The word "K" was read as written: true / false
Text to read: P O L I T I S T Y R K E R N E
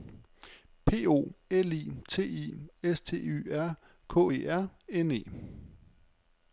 true